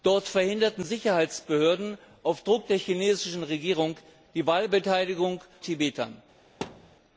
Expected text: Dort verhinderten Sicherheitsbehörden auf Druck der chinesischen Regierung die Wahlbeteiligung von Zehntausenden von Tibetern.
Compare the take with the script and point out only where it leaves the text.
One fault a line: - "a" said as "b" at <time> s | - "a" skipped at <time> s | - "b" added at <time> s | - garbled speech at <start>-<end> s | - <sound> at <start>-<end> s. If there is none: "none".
- "von Zehntausenden von" skipped at 5.4 s
- thud at 6.6-7.0 s